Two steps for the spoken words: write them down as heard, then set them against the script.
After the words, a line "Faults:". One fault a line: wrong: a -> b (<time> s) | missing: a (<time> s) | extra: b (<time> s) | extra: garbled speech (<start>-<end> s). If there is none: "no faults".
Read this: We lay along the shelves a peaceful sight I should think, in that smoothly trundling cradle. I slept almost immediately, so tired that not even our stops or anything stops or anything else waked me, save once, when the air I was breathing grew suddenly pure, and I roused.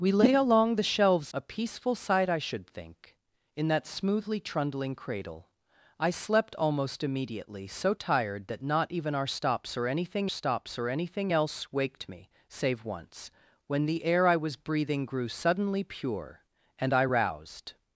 We lay along the shelves a peaceful sight I should think, in that smoothly trundling cradle. I slept almost immediately, so tired that not even our stops or anything stops or anything else waked me, save once, when the air I was breathing grew suddenly pure, and I roused.
Faults:
no faults